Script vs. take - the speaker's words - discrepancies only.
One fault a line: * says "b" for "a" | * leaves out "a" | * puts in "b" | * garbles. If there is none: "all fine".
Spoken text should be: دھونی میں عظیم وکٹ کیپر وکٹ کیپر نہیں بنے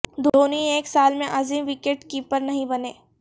* puts in "ایک سال"
* leaves out "وکٹ کیپر"